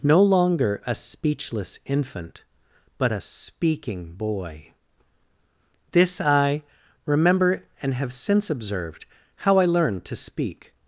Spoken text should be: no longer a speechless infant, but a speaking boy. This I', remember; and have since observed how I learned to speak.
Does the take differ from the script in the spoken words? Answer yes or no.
no